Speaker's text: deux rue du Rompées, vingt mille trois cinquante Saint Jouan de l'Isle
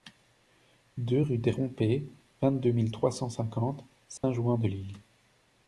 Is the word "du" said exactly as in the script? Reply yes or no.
no